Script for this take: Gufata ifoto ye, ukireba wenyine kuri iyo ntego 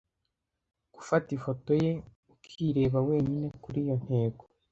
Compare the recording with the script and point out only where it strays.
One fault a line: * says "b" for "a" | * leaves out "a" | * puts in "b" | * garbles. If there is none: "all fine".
all fine